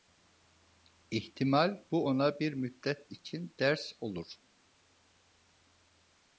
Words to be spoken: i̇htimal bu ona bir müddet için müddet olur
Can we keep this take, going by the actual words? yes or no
no